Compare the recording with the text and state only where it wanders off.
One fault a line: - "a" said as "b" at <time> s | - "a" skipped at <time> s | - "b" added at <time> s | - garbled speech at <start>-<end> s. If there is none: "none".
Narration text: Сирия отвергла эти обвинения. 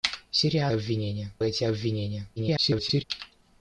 - "отвергла" said as "обвинения" at 0.7 s
- garbled speech at 2.4-3.0 s